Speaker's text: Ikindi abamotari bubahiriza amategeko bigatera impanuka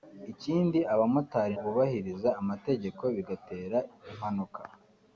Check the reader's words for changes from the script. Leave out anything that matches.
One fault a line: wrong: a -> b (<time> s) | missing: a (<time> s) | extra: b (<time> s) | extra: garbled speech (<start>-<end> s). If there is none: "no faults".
no faults